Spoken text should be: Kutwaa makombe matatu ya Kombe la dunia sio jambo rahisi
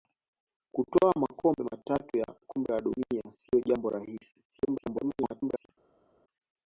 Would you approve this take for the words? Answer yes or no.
no